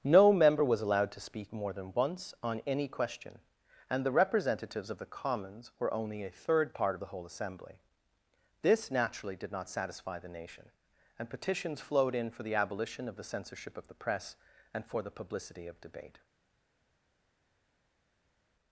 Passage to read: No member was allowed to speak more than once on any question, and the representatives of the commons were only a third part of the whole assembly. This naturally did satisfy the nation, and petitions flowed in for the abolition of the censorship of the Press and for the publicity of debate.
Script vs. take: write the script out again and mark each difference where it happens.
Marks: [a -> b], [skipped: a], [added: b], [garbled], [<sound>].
No member was allowed to speak more than once on any question, and the representatives of the commons were only a third part of the whole assembly. This naturally did [added: not] satisfy the nation, and petitions flowed in for the abolition of the censorship of the Press and for the publicity of debate.